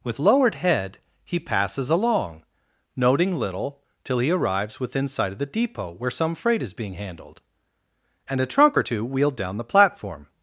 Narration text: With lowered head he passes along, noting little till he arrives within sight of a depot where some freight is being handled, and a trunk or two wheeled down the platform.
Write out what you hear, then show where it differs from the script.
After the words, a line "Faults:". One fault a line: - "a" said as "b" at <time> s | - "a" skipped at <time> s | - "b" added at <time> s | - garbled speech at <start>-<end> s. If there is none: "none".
With lowered head he passes along, noting little till he arrives within sight of the depot where some freight is being handled, and a trunk or two wheeled down the platform.
Faults:
- "a" said as "the" at 5.4 s